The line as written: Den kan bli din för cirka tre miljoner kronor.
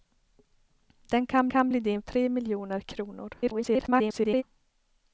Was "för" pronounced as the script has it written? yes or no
no